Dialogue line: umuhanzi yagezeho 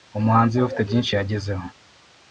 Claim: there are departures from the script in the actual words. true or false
true